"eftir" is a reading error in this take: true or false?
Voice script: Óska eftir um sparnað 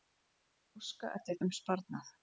false